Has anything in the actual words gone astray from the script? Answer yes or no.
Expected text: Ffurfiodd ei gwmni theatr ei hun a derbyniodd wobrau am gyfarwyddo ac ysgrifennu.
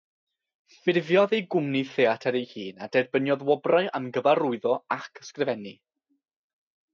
no